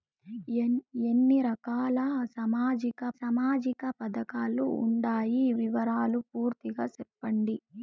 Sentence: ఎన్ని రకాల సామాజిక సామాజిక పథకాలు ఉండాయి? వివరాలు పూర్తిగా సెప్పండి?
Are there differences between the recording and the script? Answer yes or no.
no